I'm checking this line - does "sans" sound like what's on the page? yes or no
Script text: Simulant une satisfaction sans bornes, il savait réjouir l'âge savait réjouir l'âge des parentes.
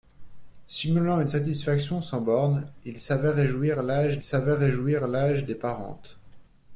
yes